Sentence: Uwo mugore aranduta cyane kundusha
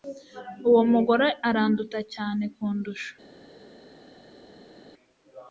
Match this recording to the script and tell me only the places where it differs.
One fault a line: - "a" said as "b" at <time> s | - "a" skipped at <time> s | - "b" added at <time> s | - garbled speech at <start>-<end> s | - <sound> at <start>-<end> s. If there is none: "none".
none